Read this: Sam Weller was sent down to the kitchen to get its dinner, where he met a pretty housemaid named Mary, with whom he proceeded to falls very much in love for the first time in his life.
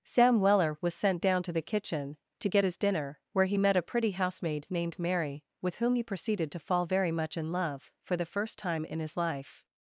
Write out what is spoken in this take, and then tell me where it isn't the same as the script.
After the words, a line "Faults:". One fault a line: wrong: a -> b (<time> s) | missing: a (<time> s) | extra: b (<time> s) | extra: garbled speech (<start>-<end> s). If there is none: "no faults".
Sam Weller was sent down to the kitchen to get his dinner, where he met a pretty housemaid named Mary, with whom he proceeded to fall very much in love for the first time in his life.
Faults:
wrong: its -> his (2.6 s)
wrong: falls -> fall (6.6 s)